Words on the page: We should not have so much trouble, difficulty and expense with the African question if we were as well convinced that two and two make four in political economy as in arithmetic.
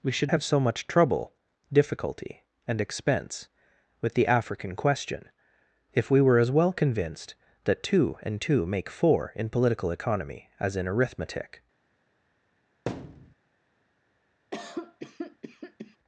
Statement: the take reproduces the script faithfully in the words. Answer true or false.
false